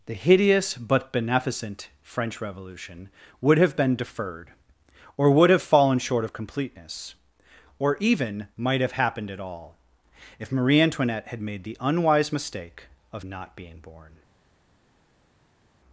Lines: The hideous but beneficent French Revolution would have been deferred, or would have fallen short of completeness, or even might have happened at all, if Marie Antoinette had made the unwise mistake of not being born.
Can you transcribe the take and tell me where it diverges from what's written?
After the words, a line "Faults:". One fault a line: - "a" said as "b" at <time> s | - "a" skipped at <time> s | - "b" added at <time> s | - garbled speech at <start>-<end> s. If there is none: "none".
The hideous but beneficent French Revolution would have been deferred, or would have fallen short of completeness, or even might have happened at all, if Marie Antoinette had made the unwise mistake of not being born.
Faults:
none